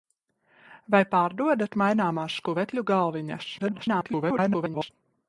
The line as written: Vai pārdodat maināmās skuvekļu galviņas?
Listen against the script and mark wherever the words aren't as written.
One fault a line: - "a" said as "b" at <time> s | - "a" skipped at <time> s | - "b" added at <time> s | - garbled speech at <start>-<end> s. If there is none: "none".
- garbled speech at 3.6-4.9 s